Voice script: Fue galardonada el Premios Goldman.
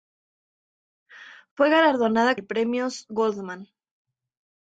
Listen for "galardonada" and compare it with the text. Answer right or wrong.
right